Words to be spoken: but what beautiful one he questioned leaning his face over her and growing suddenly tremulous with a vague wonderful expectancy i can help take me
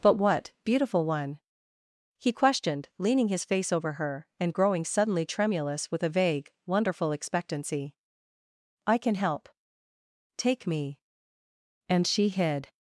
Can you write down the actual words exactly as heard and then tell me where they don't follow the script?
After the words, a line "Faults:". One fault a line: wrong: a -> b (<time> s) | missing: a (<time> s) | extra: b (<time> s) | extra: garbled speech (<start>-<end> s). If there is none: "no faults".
but what beautiful one he questioned leaning his face over her and growing suddenly tremulous with a vague wonderful expectancy i can help take me and she hid
Faults:
extra: and she hid (11.9 s)